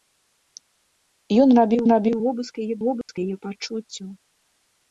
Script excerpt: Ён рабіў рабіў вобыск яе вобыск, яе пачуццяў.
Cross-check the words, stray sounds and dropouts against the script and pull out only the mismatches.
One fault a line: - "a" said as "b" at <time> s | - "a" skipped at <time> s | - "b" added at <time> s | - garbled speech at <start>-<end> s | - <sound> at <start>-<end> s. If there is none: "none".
- dropout at 3.0-3.1 s